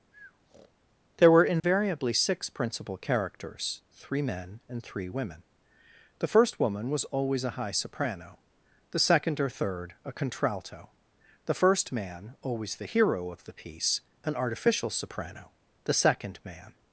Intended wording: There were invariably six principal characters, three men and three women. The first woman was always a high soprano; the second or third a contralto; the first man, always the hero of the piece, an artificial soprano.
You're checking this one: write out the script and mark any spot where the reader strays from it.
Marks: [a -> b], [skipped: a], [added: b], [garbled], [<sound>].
[breath] There were invariably [dropout] six principal characters, three men and three women. The first woman was always a high soprano; the second or third a contralto; the first man, always the hero of the piece, an artificial soprano. [added: The second man]